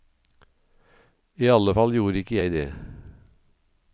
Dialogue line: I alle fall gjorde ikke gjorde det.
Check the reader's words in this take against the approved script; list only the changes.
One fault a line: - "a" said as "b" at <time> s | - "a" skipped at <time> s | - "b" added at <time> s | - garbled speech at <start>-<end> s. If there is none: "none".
- "gjorde" said as "jeg" at 2.4 s